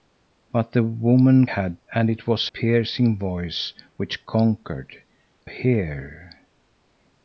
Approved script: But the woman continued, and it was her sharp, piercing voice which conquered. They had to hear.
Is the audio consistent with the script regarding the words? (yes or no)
no